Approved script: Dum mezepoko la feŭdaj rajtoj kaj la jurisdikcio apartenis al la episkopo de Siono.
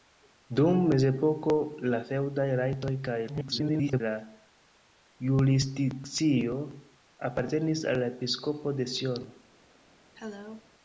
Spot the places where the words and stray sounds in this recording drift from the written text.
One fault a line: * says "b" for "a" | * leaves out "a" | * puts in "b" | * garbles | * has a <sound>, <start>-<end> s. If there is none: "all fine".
* garbles
* has a cough, 10.2-10.7 s